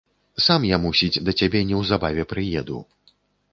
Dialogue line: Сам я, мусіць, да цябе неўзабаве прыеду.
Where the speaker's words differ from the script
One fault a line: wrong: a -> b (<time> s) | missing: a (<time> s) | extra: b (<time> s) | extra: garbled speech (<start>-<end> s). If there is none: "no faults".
no faults